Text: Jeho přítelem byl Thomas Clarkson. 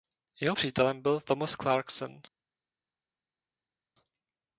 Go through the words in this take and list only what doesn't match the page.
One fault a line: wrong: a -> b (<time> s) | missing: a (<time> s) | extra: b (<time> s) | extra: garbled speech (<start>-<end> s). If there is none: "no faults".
no faults